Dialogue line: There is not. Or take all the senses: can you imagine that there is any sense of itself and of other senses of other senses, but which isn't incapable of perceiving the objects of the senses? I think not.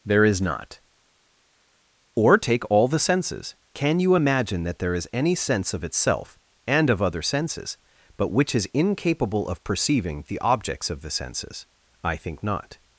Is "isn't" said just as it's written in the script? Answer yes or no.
no